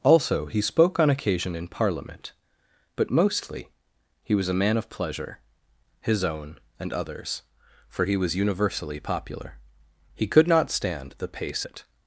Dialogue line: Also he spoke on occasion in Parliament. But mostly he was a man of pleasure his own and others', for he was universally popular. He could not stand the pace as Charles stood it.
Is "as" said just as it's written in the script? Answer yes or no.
no